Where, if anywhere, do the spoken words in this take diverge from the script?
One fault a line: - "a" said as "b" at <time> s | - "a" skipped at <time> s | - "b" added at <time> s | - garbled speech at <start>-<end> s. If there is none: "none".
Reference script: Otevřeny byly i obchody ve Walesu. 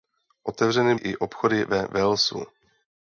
- "byly" skipped at 0.9 s